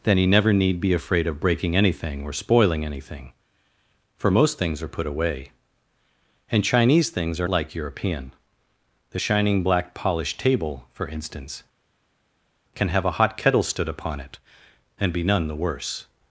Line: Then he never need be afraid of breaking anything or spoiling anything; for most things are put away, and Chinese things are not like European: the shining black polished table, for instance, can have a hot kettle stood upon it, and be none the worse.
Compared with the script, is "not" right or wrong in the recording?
wrong